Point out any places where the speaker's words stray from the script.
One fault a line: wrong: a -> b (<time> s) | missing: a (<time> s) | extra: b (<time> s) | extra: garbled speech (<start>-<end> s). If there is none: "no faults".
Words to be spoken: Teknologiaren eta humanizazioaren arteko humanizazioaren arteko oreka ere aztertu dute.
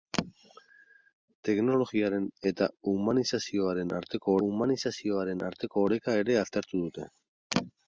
no faults